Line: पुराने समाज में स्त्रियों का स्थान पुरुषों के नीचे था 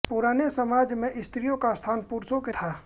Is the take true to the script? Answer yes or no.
no